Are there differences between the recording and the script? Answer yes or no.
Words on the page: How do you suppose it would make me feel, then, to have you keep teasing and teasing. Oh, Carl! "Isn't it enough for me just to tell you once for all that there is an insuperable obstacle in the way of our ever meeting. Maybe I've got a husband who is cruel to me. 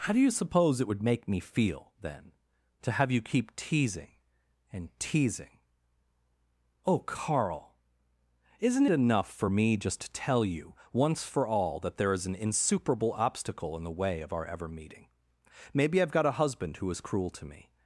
yes